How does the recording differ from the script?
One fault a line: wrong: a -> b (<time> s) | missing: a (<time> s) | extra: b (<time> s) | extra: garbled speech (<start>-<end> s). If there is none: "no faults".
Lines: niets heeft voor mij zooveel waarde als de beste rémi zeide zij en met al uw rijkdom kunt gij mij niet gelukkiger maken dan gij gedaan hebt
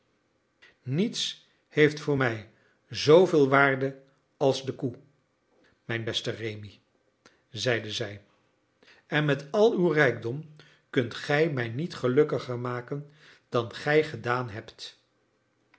extra: koe mijn (4.7 s)